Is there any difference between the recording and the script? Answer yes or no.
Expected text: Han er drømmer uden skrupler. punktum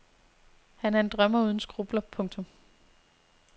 yes